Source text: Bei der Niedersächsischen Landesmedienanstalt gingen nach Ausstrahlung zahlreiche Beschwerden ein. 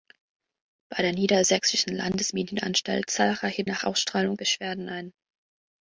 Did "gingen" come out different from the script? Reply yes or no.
yes